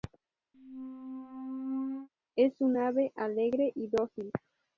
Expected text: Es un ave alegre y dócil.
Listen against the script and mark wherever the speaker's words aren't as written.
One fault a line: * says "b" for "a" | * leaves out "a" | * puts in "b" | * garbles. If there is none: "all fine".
all fine